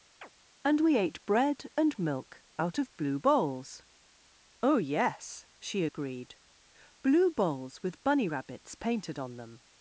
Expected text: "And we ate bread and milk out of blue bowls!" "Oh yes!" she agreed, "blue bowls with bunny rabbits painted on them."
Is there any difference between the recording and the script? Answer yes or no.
no